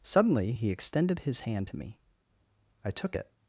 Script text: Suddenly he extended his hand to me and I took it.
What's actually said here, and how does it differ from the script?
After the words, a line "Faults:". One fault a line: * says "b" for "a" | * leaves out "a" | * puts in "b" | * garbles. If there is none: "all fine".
Suddenly he extended his hand to me I took it.
Faults:
* leaves out "and"